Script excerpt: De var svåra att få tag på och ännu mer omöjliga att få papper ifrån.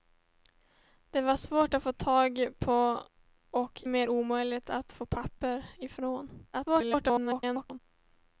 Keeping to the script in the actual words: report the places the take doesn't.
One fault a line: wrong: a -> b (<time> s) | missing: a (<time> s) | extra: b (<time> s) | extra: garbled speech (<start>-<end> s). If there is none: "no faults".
missing: ännu (3.8 s)
extra: garbled speech (6.5-7.8 s)